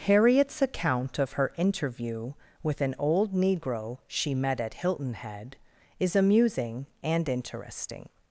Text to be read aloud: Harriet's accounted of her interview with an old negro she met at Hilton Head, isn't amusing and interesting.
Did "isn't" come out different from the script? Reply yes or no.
yes